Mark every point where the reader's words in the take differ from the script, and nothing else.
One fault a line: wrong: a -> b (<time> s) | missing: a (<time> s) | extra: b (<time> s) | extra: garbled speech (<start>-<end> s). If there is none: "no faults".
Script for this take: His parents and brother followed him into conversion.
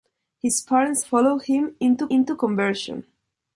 missing: and brother (1.0 s)
extra: into (2.1 s)